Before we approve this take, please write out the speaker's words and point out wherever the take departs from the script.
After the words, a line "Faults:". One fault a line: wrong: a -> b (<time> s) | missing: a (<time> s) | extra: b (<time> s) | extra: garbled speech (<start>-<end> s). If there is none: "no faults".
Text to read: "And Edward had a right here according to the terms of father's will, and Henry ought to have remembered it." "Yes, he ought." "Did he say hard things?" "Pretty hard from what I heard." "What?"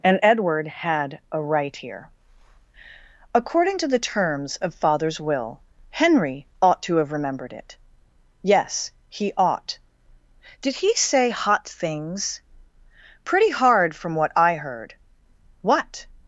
"And Edward had a right here according to the terms of father's will, Henry ought to have remembered it." "Yes, he ought." "Did he say hot things?" "Pretty hard from what I heard." "What?"
Faults:
missing: and (5.6 s)
wrong: hard -> hot (11.3 s)